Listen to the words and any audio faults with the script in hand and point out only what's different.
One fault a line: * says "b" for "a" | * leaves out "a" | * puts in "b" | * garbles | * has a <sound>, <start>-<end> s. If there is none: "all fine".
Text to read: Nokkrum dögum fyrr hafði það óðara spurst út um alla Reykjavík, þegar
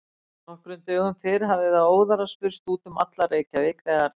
all fine